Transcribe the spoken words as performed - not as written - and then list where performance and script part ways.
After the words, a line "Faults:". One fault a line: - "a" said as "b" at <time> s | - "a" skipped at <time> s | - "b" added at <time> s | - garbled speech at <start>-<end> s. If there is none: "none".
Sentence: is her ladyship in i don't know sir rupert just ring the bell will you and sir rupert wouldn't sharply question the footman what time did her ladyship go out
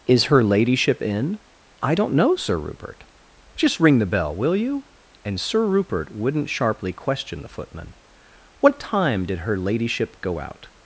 is her ladyship in i don't know sir rupert just ring the bell will you and sir rupert wouldn't sharply question the footman what time did her ladyship go out
Faults:
none